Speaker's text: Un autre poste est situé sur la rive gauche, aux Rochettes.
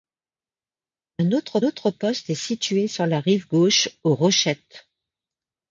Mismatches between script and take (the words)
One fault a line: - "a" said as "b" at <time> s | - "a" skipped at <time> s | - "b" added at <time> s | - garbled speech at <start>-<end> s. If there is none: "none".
- "autre" added at 1.6 s